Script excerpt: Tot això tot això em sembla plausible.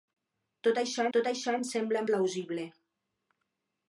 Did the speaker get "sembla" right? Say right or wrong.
right